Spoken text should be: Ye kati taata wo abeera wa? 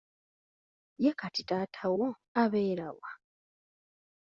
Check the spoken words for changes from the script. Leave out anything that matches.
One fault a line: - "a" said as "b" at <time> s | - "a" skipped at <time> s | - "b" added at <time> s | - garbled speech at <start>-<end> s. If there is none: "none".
none